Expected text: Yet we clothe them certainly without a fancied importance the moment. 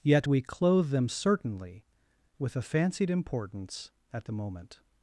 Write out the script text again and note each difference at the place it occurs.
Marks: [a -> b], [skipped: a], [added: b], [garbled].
Yet we clothe them certainly [without -> with] a fancied importance [added: at] the moment.